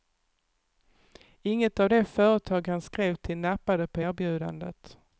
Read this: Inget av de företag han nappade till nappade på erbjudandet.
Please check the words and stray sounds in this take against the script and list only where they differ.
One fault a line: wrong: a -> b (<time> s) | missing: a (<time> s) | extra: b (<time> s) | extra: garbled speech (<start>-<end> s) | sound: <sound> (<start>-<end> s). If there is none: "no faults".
wrong: nappade -> skrev (2.8 s)